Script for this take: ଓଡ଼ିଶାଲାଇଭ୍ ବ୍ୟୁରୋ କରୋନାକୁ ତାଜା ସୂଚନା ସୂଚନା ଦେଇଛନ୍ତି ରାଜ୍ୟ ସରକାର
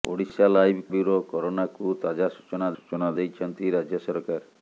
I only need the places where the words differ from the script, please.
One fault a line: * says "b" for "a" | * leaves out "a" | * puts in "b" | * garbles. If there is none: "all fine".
all fine